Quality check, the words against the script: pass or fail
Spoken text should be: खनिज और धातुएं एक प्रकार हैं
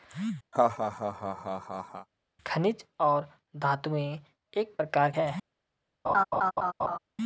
pass